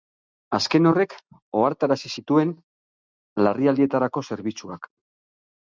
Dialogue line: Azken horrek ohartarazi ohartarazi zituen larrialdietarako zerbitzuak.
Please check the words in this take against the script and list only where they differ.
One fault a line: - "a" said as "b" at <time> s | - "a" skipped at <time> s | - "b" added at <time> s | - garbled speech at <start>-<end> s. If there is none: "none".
- "ohartarazi" skipped at 2.1 s